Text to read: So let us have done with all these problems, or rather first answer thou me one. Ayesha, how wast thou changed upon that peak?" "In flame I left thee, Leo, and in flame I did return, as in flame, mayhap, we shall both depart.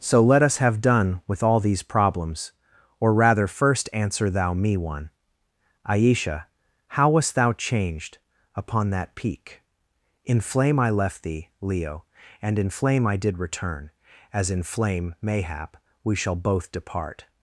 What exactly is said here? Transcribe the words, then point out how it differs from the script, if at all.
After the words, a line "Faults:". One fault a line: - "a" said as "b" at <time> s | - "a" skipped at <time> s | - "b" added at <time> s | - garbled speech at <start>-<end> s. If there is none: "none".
So let us have done with all these problems, or rather first answer thou me one. Ayesha, how wast thou changed upon that peak?" "In flame I left thee, Leo, and in flame I did return, as in flame, mayhap, we shall both depart.
Faults:
none